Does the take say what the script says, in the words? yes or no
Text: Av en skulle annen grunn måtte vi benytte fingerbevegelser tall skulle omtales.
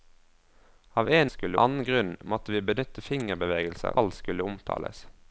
yes